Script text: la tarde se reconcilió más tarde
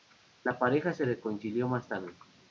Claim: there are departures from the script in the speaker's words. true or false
true